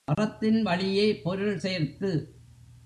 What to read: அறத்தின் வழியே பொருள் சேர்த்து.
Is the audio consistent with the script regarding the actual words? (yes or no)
yes